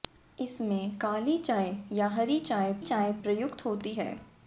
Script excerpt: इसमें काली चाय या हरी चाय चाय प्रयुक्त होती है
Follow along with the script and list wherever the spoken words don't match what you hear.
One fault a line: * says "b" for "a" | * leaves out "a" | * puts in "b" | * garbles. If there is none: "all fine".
all fine